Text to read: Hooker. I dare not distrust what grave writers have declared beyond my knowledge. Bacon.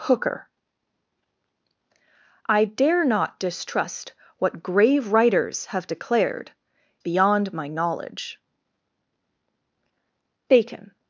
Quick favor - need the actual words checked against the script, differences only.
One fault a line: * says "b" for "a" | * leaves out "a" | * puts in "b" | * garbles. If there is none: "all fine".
all fine